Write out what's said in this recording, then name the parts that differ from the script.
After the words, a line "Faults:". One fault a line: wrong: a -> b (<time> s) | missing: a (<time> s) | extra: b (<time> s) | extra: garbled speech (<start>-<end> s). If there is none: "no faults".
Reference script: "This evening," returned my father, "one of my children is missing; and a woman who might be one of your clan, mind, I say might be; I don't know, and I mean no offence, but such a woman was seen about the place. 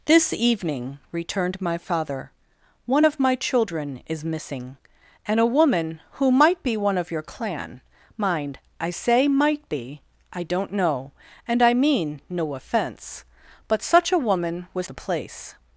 "This evening," returned my father, "one of my children is missing; and a woman who might be one of your clan, mind, I say might be; I don't know, and I mean no offence, but such a woman was the place.
Faults:
missing: seen about (14.9 s)